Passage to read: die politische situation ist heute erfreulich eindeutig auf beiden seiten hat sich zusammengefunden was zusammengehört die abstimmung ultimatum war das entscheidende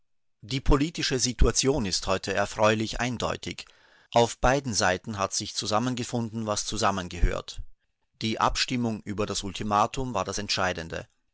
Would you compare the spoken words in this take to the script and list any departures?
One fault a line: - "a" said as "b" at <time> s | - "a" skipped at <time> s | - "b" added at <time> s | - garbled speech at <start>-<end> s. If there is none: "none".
- "über das" added at 9.0 s